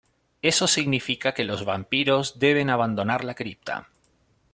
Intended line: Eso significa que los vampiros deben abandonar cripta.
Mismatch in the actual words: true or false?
true